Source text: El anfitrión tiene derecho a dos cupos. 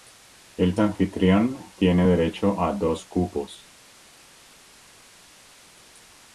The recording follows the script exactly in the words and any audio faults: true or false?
true